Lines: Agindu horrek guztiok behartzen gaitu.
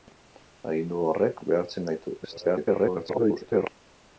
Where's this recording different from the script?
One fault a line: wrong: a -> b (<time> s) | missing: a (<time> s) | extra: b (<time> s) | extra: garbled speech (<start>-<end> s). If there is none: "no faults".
missing: guztiok (1.4 s)
extra: garbled speech (2.2-3.7 s)